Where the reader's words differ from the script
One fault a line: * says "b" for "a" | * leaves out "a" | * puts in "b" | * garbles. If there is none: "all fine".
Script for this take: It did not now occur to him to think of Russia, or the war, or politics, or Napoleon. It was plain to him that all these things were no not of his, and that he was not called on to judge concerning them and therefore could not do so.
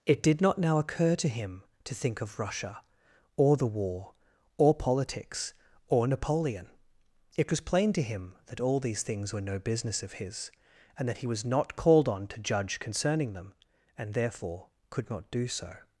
* says "business" for "not"